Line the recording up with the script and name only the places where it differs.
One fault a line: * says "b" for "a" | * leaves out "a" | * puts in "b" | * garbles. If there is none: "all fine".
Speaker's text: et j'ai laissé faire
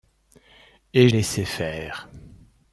* leaves out "j'ai"